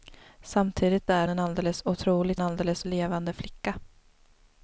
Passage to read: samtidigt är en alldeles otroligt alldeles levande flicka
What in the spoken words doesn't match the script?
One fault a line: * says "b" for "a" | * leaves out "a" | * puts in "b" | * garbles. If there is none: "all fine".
all fine